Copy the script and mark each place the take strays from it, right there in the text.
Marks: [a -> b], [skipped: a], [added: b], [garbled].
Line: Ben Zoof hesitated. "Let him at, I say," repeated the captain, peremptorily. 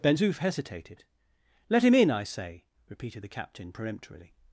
Ben Zoof hesitated. "Let him [at, -> in] I say," repeated the captain, peremptorily.